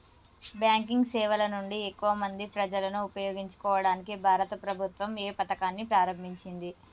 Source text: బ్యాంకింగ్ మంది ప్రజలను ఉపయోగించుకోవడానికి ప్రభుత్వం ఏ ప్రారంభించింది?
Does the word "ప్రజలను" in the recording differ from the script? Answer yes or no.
no